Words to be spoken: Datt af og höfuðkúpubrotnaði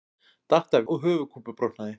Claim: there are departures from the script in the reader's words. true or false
false